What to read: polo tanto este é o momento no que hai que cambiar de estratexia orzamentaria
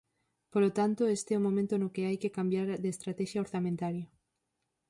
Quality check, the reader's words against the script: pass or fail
pass